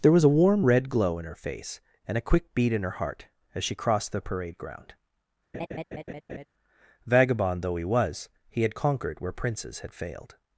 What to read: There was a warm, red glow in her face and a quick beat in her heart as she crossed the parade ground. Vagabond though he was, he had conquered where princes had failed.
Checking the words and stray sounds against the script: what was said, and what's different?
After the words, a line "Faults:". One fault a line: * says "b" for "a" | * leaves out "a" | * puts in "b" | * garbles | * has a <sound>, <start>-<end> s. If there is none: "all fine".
There was a warm, red glow in her face and a quick beat in her heart as she crossed the parade ground. Vagabond though he was, he had conquered where princes had failed.
Faults:
* has a laugh, 5.5-6.5 s